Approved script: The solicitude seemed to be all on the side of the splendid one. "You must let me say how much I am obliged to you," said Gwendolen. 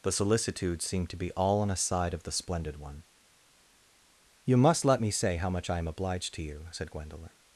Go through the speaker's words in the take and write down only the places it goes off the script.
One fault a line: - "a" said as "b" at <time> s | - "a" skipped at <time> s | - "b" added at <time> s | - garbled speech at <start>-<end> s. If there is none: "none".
- "the" said as "a" at 1.7 s